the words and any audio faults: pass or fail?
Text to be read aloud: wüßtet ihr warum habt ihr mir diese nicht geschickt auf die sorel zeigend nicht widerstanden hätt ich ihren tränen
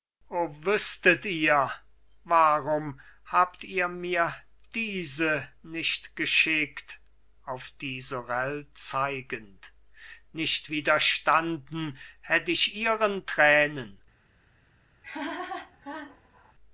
fail